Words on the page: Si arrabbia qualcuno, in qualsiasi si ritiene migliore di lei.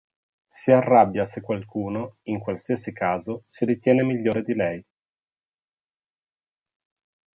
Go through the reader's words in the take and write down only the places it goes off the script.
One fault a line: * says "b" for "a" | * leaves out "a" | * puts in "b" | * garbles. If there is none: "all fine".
* puts in "se"
* puts in "caso"